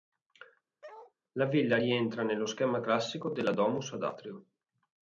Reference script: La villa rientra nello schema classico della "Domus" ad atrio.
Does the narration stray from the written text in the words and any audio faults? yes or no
yes